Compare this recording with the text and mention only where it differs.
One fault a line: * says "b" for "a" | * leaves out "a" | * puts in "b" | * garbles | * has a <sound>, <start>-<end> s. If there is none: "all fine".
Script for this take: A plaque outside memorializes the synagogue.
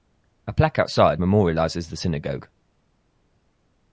all fine